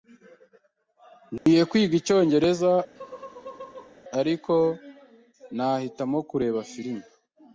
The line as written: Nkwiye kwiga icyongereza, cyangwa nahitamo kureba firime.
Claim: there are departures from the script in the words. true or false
true